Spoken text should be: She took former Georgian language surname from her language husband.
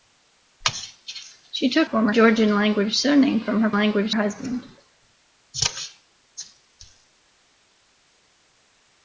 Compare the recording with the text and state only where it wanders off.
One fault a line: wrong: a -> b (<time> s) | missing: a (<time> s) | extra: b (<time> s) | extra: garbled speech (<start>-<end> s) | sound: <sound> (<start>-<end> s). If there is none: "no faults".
no faults